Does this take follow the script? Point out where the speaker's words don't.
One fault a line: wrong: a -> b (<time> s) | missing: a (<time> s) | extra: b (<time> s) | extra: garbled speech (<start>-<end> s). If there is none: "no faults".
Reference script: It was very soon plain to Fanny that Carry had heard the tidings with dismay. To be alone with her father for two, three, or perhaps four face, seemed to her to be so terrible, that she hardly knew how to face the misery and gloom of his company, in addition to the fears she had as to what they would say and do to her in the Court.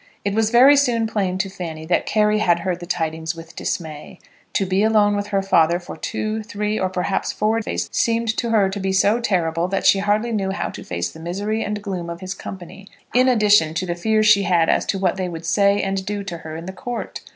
no faults